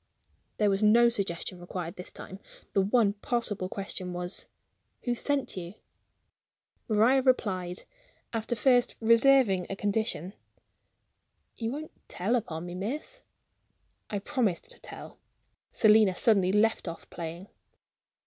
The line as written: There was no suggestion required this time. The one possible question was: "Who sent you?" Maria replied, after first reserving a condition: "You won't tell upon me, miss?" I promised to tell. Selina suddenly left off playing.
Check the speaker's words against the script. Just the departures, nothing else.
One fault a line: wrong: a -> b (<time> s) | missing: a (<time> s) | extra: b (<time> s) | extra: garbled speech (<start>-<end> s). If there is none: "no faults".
no faults